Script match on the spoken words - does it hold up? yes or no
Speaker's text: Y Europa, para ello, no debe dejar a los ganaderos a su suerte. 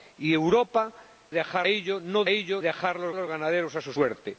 no